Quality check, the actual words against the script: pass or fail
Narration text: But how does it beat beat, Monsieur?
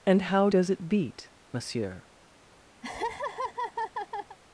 fail